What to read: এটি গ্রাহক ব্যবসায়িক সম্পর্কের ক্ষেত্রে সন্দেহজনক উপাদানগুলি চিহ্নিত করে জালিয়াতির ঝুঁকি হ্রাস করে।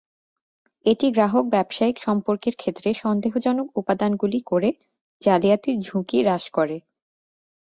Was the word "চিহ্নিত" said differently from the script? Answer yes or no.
yes